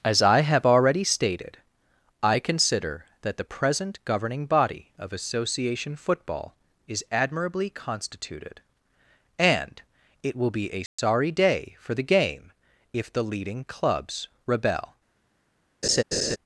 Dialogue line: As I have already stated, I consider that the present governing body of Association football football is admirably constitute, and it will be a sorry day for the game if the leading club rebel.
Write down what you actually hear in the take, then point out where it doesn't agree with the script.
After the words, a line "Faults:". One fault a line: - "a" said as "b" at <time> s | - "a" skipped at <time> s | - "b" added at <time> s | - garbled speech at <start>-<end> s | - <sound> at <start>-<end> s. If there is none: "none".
As I have already stated, I consider that the present governing body of Association football is admirably constituted, and it will be a sorry day for the game if the leading clubs rebel.
Faults:
- "football" skipped at 6.5 s
- "constitute" said as "constituted" at 7.7 s
- dropout at 10.9-11.0 s
- "club" said as "clubs" at 13.6 s
- laugh at 15.8-16.4 s